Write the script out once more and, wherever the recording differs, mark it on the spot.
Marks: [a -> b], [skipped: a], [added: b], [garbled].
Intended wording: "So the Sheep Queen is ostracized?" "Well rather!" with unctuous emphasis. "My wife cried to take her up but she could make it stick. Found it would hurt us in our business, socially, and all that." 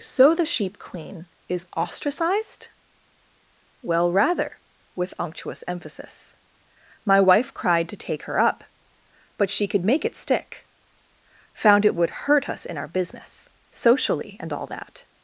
"So the Sheep Queen is ostracized?" "Well rather!" with unctuous emphasis. "My wife cried to take her up but she could make it stick. Found it would hurt us in our business, socially, and all that."